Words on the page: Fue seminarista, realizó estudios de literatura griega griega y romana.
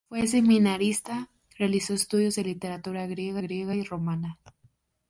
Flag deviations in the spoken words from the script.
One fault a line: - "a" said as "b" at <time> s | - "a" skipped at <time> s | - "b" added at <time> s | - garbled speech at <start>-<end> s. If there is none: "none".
none